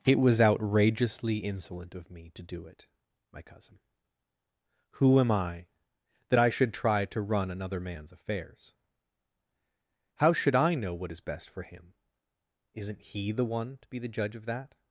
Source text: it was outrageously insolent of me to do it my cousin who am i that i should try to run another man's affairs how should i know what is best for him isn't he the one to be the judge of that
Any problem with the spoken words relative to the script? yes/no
no